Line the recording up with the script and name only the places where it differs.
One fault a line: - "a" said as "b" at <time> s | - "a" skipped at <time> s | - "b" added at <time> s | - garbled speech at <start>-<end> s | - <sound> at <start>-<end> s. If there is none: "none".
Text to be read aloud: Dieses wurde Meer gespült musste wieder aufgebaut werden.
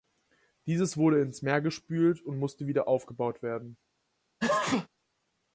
- "ins" added at 1.2 s
- "und" added at 2.2 s
- sneeze at 4.4-4.9 s